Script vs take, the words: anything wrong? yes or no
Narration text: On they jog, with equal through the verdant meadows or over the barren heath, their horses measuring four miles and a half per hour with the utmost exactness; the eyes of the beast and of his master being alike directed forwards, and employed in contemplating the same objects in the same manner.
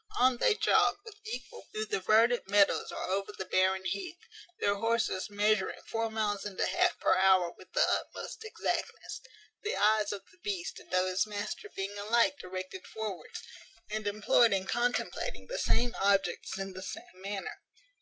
no